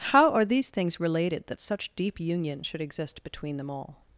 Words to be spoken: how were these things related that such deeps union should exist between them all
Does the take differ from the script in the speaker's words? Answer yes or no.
yes